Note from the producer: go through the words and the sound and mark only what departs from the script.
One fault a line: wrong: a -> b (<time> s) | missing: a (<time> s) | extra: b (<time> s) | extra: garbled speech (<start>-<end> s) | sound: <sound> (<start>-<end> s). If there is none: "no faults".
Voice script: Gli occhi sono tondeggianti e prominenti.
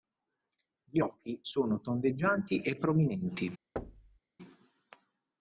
sound: thud (3.8-4.2 s)